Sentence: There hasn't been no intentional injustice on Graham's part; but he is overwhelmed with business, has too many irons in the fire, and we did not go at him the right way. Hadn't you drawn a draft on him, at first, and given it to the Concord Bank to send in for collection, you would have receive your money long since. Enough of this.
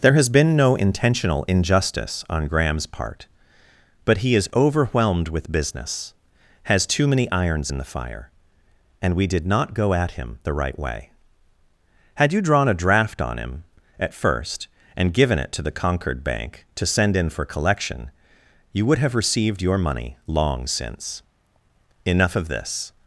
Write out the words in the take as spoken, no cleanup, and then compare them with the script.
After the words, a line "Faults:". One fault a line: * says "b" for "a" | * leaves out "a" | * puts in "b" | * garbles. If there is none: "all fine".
There has been no intentional injustice on Graham's part; but he is overwhelmed with business, has too many irons in the fire, and we did not go at him the right way. Had you drawn a draft on him, at first, and given it to the Concord Bank to send in for collection, you would have received your money long since. Enough of this.
Faults:
* says "has" for "hasn't"
* says "Had" for "Hadn't"
* says "received" for "receive"